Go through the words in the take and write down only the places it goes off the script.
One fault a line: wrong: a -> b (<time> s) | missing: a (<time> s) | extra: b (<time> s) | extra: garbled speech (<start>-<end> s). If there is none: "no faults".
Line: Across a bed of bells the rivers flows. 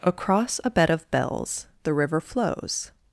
wrong: rivers -> river (1.9 s)